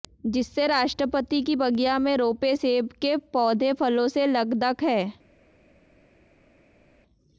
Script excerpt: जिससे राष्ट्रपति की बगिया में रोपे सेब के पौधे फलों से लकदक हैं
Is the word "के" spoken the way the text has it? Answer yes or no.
yes